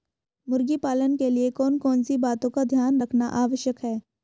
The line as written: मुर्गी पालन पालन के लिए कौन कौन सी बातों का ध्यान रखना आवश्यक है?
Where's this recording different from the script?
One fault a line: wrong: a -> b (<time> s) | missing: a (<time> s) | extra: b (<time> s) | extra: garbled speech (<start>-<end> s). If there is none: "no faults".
missing: पालन (1.2 s)